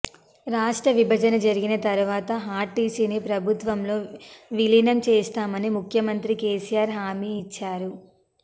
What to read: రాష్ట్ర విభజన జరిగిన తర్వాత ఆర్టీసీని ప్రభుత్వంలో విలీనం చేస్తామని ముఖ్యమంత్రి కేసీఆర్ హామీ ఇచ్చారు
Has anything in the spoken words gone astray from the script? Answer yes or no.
no